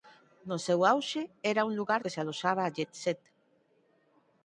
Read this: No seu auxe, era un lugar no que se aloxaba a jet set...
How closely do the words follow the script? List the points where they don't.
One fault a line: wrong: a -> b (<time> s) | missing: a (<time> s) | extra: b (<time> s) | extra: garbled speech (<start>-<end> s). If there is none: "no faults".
missing: no (2.0 s)